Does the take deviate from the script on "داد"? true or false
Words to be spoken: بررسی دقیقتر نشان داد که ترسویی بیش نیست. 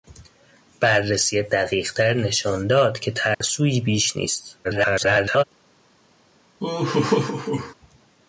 false